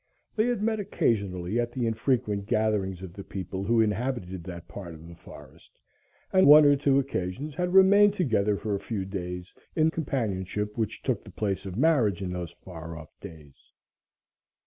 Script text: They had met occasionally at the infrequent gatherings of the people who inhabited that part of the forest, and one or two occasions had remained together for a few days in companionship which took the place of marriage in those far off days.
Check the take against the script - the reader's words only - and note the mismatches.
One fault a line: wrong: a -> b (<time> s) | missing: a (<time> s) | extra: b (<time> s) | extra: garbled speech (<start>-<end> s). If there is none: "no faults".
no faults